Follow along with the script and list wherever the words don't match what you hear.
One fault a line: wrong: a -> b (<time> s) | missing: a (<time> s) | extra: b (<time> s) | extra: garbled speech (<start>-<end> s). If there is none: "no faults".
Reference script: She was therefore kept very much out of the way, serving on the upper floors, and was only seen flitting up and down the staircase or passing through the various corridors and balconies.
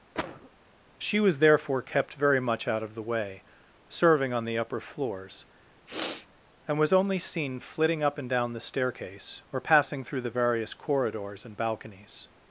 no faults